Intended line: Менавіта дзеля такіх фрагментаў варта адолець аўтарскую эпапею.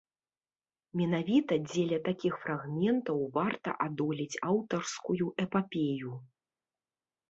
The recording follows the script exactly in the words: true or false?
true